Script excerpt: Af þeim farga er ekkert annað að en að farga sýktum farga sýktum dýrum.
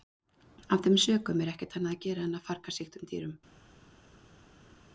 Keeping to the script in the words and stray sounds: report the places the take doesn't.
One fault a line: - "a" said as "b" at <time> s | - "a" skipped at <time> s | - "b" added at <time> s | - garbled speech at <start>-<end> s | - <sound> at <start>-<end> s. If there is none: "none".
- "farga" said as "sökum" at 1.0 s
- "gera" added at 2.1 s
- "farga sýktum" skipped at 3.1 s